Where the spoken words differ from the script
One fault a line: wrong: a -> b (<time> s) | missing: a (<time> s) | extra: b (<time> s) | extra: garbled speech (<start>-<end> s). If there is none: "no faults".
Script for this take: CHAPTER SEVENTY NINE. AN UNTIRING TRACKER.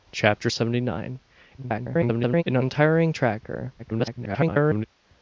extra: garbled speech (1.6-2.4 s)
extra: garbled speech (3.8-4.9 s)